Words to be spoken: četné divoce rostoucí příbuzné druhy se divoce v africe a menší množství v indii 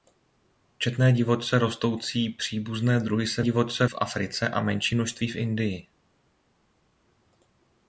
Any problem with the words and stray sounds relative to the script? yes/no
no